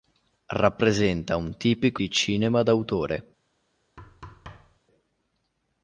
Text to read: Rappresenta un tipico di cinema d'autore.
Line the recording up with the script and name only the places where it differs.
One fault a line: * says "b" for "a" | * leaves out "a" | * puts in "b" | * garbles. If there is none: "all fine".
all fine